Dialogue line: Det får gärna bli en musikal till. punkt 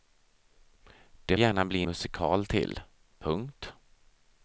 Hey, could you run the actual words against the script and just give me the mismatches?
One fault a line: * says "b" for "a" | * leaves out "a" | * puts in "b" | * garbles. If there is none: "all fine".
* leaves out "får"
* leaves out "en"